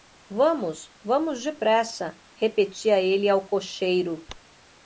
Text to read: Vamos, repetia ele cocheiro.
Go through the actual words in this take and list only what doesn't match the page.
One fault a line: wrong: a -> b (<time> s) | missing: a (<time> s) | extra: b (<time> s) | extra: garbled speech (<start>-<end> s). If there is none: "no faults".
extra: vamos depressa (1.0 s)
extra: ao (3.3 s)